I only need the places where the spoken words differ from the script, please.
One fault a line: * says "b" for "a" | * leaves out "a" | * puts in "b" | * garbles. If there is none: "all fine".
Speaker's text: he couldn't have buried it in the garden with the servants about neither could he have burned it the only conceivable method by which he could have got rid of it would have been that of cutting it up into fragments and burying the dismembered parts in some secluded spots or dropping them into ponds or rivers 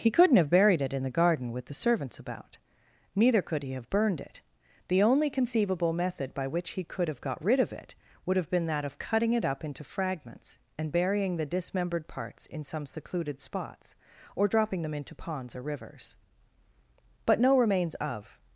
* puts in "but no remains of"